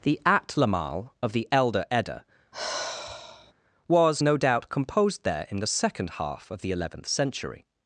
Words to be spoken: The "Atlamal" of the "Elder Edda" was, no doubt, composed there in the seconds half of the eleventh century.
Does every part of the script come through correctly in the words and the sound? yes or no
no